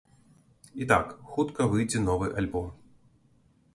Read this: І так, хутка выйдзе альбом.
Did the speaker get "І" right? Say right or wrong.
right